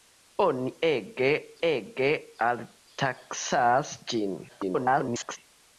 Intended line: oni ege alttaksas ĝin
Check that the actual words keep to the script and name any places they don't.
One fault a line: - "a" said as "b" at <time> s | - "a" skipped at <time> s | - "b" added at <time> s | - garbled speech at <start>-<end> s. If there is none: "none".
- "ege" added at 1.7 s
- garbled speech at 4.5-5.4 s